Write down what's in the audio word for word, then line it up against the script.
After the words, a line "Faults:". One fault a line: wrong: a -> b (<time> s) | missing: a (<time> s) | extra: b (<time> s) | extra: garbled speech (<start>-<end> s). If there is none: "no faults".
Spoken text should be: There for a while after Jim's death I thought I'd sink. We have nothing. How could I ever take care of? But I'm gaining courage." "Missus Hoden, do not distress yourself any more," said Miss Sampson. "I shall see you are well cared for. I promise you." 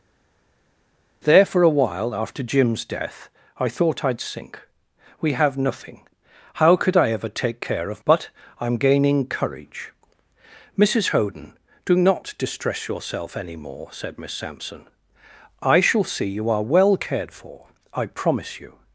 There for a while after Jim's death I thought I'd sink. We have nothing. How could I ever take care of? But I'm gaining courage." "Missus Hoden, do not distress yourself any more," said Miss Sampson. "I shall see you are well cared for. I promise you."
Faults:
no faults